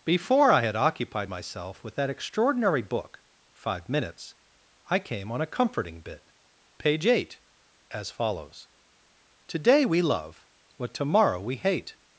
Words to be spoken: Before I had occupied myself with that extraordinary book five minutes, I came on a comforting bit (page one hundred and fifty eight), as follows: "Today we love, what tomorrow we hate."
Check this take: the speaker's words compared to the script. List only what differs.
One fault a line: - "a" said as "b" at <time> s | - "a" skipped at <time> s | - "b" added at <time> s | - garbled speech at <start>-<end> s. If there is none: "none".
- "one hundred and fifty" skipped at 7.1 s